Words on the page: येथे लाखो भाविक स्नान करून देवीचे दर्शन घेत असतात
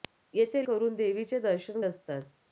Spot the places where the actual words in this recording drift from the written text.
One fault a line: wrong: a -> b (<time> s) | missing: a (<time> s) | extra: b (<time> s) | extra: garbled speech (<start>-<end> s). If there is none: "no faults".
missing: लाखो भाविक स्नान (0.7 s)
missing: घेत (1.8 s)